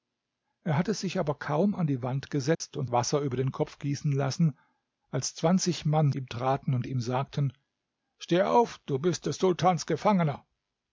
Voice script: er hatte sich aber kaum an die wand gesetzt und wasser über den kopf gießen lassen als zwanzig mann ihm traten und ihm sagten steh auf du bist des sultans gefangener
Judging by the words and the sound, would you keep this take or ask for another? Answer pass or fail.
fail